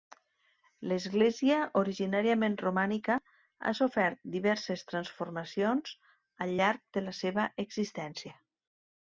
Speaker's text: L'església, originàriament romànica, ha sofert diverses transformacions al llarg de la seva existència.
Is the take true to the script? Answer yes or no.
yes